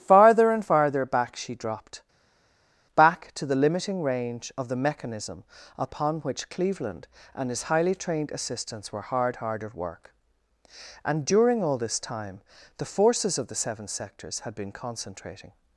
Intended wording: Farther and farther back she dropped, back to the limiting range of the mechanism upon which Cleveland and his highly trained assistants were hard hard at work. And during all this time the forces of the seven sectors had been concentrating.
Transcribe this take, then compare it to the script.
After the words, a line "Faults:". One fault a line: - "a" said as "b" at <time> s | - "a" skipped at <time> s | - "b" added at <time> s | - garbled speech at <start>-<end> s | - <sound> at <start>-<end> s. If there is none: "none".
Farther and farther back she dropped, back to the limiting range of the mechanism upon which Cleveland and his highly trained assistants were hard hard at work. And during all this time the forces of the seven sectors had been concentrating.
Faults:
none